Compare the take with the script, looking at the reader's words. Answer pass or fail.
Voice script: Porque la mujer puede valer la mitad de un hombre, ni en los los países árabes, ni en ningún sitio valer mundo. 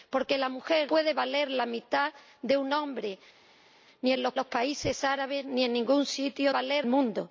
pass